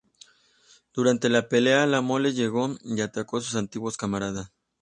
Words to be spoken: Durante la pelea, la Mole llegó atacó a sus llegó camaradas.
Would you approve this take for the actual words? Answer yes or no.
no